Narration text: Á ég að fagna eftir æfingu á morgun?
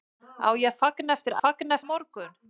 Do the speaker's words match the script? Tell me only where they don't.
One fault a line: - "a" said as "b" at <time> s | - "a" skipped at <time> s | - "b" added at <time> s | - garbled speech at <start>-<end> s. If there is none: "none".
- "æfingu" said as "fagna" at 1.4 s